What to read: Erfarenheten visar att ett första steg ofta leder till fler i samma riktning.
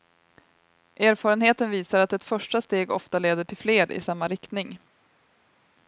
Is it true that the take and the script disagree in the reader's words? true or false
false